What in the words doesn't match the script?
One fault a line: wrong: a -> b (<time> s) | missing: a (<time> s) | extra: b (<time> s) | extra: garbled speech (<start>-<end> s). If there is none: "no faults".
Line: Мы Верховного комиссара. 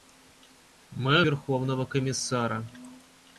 no faults